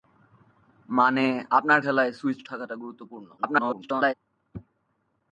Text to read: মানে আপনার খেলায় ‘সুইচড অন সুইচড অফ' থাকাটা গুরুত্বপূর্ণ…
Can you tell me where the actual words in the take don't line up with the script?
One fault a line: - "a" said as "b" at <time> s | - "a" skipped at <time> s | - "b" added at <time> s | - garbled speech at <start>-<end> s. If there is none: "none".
- "অন সুইচড অফ" skipped at 2.5 s
- garbled speech at 3.4-4.1 s